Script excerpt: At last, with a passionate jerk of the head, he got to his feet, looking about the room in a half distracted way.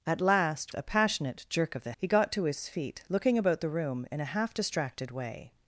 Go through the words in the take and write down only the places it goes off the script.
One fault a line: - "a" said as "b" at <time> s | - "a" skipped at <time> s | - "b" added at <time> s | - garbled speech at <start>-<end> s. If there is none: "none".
- "with" skipped at 0.7 s
- "head" skipped at 1.9 s